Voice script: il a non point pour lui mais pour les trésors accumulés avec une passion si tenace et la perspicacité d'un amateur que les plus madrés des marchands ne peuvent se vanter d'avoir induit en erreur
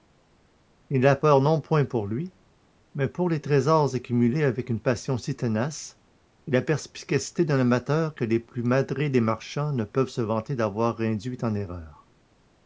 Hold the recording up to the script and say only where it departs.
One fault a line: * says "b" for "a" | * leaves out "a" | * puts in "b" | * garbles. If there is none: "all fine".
* puts in "peur"